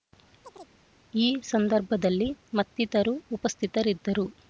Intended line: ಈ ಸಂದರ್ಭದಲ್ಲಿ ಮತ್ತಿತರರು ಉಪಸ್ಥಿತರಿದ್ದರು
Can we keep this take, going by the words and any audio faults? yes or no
no